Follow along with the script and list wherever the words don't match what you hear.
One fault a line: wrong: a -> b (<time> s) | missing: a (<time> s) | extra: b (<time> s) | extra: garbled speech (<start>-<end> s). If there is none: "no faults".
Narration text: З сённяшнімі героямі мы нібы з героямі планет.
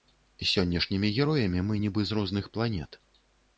wrong: героямі -> розных (2.2 s)